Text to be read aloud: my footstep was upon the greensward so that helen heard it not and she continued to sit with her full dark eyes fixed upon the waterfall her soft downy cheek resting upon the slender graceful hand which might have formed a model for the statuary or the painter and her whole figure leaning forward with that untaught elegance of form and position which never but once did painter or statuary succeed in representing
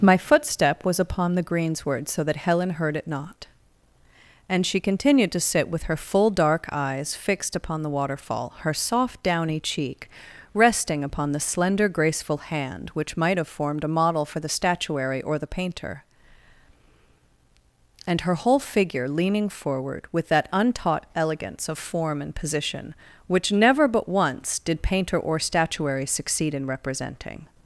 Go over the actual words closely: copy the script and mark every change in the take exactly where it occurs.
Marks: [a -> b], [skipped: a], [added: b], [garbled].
my footstep was upon the greensward so that helen heard it not and she continued to sit with her full dark eyes fixed upon the waterfall her soft downy cheek resting upon the slender graceful hand which might have formed a model for the statuary or the painter and her whole figure leaning forward with that untaught elegance of form and position which never but once did painter or statuary succeed in representing